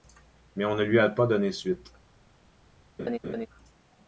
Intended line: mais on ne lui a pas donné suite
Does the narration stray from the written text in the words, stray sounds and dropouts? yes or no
yes